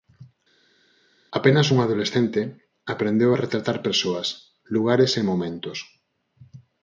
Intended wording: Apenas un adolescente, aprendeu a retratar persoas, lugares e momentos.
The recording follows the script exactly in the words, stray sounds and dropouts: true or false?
true